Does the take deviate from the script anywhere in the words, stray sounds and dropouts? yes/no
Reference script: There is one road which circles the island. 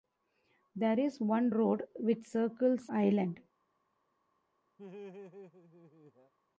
yes